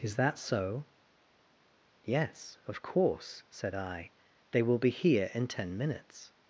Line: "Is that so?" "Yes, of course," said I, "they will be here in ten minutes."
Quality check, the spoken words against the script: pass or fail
pass